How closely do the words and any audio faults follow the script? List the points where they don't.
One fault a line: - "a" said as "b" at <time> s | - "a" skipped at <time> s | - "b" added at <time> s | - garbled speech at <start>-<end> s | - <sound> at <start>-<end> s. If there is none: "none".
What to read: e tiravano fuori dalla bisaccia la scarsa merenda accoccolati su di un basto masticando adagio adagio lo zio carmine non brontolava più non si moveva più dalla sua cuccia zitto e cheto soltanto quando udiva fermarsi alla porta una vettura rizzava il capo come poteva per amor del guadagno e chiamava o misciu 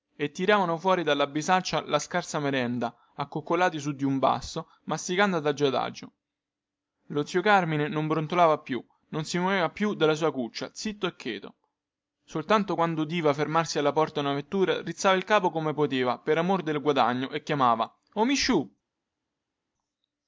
none